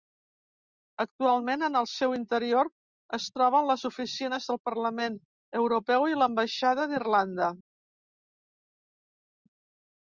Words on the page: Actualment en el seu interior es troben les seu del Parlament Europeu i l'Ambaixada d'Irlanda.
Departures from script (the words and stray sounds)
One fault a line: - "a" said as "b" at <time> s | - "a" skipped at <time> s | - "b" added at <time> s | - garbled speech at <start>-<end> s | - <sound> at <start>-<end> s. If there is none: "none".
- "seu" said as "oficines" at 3.9 s